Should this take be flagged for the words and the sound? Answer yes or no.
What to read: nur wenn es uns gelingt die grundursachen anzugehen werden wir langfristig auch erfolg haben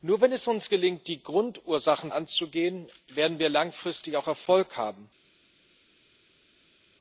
no